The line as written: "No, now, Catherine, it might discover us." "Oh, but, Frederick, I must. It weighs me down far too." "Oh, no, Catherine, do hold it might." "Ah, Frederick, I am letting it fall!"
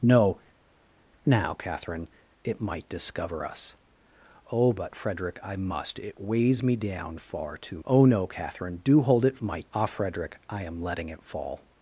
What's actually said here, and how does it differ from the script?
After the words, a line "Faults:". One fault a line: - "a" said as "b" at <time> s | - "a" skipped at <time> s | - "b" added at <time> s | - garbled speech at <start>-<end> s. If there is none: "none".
"No, now, Catherine, it might discover us." "Oh, but, Frederick, I must. It weighs me down far too." "Oh, no, Catherine, do hold it might." "Ah, Frederick, I am letting it fall!"
Faults:
none